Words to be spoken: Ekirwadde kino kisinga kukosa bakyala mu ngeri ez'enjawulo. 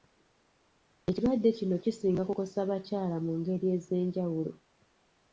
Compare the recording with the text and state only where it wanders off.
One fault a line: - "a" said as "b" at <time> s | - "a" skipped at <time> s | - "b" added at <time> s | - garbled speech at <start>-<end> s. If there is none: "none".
none